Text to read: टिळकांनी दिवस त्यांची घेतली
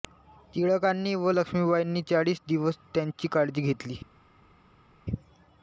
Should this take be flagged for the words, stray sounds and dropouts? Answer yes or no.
yes